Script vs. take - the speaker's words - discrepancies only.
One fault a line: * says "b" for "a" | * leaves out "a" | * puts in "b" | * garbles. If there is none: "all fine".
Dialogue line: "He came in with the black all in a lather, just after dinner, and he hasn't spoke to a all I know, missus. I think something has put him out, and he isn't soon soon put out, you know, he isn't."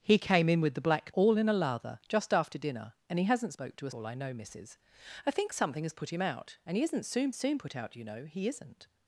all fine